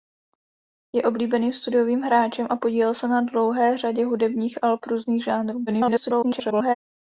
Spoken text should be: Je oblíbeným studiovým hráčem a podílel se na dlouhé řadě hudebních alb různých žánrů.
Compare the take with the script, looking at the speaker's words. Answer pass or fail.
fail